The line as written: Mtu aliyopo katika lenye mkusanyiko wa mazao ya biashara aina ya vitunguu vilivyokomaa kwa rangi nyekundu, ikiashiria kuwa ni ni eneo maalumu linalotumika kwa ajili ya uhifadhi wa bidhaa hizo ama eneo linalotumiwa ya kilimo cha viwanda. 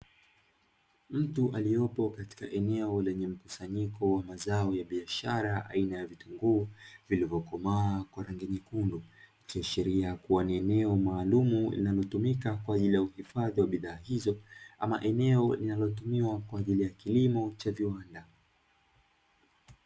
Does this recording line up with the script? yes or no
no